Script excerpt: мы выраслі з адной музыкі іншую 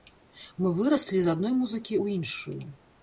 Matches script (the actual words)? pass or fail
fail